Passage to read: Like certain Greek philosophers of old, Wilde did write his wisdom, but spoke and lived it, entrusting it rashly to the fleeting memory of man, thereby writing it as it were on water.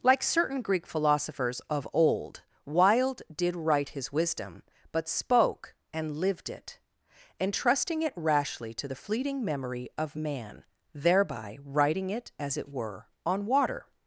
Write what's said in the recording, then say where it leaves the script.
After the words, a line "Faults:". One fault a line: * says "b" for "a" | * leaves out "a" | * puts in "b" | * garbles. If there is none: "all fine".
Like certain Greek philosophers of old, Wilde did write his wisdom, but spoke and lived it, entrusting it rashly to the fleeting memory of man, thereby writing it as it were on water.
Faults:
all fine